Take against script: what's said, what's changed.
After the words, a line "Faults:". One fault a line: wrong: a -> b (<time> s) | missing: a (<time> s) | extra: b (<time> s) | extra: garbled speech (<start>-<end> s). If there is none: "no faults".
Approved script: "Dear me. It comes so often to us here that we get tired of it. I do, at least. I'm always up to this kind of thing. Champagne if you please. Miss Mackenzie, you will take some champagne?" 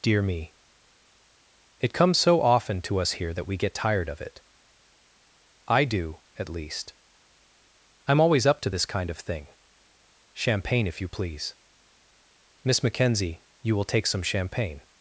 "Dear me. It comes so often to us here that we get tired of it. I do, at least. I'm always up to this kind of thing. Champagne if you please. Miss Mackenzie, you will take some champagne?"
Faults:
no faults